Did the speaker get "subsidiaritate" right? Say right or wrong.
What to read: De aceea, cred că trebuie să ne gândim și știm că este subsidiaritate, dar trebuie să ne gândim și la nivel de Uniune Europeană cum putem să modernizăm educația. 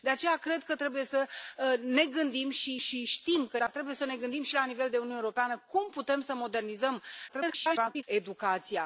wrong